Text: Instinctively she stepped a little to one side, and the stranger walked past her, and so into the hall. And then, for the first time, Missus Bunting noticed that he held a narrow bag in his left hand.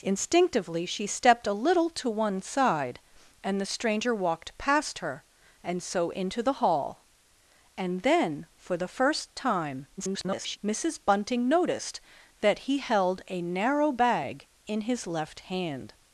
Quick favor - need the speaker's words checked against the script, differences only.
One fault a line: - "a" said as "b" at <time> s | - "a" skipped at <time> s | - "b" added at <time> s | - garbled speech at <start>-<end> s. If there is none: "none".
- garbled speech at 10.0-10.6 s